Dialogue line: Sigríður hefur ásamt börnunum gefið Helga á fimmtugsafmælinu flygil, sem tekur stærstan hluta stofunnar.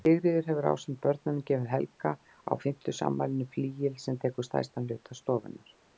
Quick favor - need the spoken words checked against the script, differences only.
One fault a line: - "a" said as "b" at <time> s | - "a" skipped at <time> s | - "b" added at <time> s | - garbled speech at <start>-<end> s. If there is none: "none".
none